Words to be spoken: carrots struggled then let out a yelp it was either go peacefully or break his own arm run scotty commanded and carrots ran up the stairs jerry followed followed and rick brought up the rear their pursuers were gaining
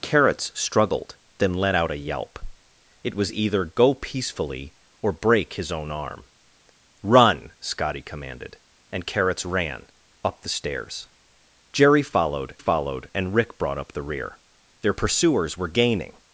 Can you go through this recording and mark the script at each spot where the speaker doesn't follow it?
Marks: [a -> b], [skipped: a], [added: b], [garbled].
carrots struggled then let out a yelp it was either go peacefully or break his own arm run scotty commanded and carrots ran up the stairs jerry followed followed and rick brought up the rear their pursuers were gaining